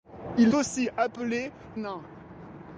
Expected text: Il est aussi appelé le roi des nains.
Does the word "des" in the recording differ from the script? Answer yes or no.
yes